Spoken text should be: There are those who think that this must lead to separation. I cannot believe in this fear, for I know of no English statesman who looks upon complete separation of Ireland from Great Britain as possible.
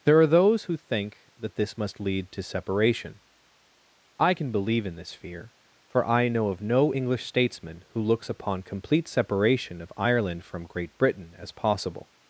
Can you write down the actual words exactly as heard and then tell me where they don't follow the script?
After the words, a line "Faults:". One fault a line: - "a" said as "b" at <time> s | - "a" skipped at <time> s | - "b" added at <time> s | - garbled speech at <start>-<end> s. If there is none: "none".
There are those who think that this must lead to separation. I can believe in this fear, for I know of no English statesman who looks upon complete separation of Ireland from Great Britain as possible.
Faults:
- "cannot" said as "can" at 4.3 s